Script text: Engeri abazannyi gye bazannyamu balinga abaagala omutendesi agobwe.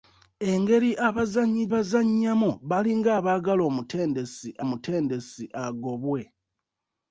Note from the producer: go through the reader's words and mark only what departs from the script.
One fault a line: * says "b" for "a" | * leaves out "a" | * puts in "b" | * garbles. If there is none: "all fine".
* leaves out "gye"
* puts in "omutendesi"